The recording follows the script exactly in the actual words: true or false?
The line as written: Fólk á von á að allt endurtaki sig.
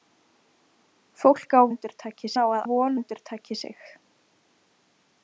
false